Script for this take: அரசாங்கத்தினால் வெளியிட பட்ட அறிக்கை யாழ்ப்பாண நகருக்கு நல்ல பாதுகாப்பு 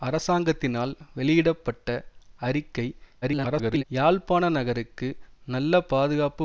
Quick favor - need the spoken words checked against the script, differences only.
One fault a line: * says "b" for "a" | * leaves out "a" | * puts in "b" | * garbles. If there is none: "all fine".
* garbles